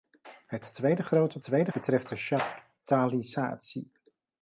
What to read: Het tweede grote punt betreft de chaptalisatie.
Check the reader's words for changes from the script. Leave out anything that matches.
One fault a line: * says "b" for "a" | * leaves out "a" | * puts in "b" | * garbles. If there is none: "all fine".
* says "tweede" for "punt"